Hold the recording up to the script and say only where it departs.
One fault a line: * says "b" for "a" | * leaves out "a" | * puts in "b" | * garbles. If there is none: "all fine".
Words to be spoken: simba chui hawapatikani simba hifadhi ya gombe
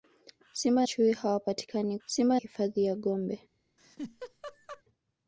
all fine